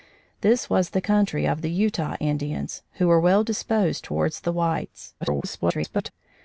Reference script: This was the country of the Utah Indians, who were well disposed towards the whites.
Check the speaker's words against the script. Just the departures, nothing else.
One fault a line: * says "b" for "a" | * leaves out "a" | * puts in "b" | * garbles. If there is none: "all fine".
* garbles